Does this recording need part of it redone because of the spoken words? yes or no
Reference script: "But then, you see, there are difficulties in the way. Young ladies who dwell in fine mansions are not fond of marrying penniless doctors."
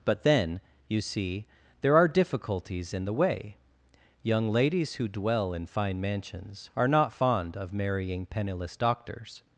no